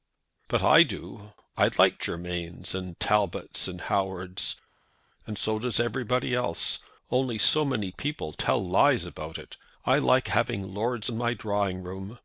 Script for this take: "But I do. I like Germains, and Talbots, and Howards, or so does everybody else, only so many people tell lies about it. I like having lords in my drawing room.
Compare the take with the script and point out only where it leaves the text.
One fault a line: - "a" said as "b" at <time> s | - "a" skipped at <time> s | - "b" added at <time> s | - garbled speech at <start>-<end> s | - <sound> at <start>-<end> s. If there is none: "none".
- "or" said as "and" at 5.2 s